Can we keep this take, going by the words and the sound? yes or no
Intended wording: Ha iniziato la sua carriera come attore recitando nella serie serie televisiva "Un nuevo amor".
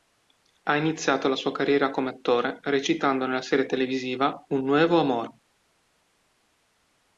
no